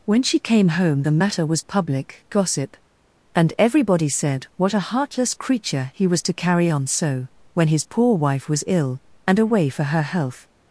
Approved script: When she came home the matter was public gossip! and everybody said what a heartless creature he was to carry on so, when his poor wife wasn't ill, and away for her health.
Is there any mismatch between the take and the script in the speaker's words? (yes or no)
yes